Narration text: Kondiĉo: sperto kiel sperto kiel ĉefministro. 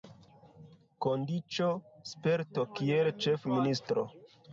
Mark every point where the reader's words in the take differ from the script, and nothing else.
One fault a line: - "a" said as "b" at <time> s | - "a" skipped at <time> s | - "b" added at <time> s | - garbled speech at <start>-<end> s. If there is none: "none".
- "sperto kiel" skipped at 3.1 s